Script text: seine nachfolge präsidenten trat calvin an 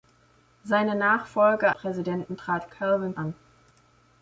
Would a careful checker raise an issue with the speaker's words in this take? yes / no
no